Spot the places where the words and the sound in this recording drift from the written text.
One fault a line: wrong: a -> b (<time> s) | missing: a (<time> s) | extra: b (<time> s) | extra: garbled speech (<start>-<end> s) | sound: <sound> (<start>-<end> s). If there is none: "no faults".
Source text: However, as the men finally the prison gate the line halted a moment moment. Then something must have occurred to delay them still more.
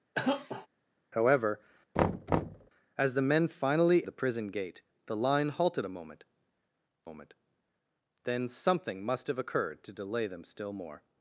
sound: cough (0.1-0.7 s)
sound: thud (2.0-2.7 s)